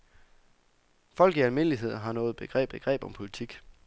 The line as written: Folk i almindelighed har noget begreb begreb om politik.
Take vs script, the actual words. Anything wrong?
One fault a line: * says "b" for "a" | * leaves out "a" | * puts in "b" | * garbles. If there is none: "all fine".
all fine